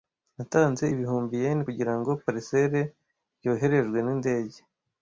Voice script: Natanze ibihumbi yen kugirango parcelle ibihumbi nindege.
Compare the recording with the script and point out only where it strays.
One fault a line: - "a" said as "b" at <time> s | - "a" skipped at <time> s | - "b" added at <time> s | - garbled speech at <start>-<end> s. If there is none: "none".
- "ibihumbi" said as "yoherejwe" at 3.4 s